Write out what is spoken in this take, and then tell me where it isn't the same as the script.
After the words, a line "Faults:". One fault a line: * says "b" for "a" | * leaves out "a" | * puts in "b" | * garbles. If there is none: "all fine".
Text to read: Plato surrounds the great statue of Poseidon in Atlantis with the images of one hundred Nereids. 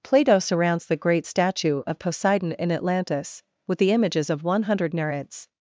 Plato surrounds the great statue of Poseidon in Atlantis with the images of one hundred Nereids.
Faults:
all fine